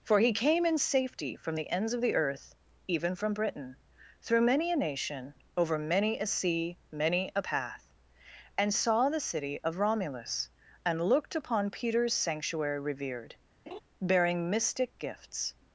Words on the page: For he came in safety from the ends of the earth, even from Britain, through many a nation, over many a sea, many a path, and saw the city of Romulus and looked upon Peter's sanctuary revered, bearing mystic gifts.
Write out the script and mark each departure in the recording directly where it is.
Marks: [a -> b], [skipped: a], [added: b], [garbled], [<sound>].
For he came in safety from the ends of the earth, even from Britain, through many a nation, over many a sea, many a path, and saw the city of Romulus and looked upon Peter's sanctuary revered, [laugh] bearing mystic gifts.